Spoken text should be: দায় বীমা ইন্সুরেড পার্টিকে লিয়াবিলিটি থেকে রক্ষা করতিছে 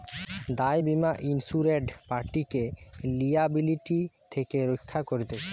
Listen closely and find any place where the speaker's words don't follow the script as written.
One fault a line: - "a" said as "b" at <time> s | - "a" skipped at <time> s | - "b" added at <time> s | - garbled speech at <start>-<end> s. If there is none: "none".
none